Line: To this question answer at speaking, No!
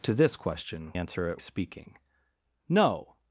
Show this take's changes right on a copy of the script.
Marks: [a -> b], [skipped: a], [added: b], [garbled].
To this question answer at speaking, No!